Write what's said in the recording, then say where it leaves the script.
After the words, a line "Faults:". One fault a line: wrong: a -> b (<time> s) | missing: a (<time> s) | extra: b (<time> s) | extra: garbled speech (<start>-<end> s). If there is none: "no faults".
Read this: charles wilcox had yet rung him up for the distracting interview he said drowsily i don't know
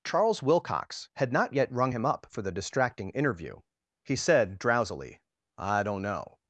charles wilcox had not yet rung him up for the distracting interview he said drowsily i don't know
Faults:
extra: not (1.3 s)